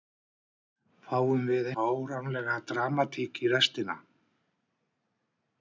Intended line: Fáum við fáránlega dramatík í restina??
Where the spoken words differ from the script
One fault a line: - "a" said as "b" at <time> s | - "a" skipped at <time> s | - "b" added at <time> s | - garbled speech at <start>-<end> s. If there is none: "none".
none